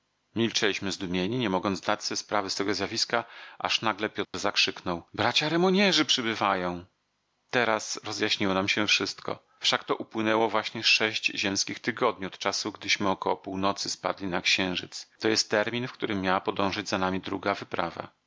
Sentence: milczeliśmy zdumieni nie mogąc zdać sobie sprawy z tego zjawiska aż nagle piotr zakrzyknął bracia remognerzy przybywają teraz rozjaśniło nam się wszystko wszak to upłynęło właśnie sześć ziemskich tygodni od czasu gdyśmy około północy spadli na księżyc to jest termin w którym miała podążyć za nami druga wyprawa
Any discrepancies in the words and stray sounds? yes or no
yes